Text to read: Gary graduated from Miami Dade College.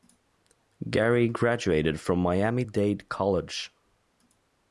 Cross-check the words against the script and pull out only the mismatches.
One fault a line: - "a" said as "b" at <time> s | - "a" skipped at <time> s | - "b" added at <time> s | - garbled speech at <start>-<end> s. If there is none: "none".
none